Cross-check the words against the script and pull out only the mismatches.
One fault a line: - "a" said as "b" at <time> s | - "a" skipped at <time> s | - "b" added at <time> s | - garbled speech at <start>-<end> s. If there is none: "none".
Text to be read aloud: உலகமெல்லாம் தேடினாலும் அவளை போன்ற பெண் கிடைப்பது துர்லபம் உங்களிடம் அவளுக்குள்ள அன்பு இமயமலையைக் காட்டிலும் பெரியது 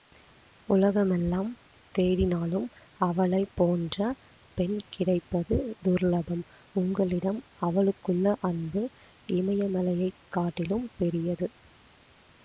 none